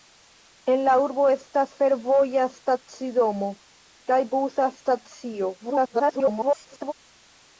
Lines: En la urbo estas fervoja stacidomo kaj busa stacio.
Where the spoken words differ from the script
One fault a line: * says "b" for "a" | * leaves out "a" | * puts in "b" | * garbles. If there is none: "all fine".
* garbles